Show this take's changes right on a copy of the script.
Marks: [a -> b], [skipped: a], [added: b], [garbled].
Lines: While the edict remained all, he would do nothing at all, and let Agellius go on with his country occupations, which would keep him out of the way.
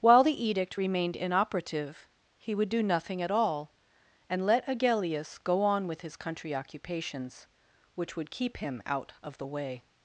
While the edict remained [all, -> inoperative] he would do nothing at all, and let Agellius go on with his country occupations, which would keep him out of the way.